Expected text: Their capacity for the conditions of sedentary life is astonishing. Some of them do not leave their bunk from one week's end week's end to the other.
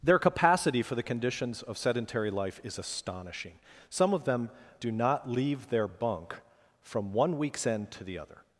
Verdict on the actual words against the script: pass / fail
fail